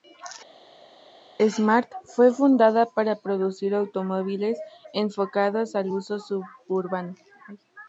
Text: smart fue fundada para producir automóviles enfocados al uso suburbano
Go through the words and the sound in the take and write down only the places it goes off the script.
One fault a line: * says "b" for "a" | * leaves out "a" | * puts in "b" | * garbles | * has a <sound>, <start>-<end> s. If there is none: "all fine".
all fine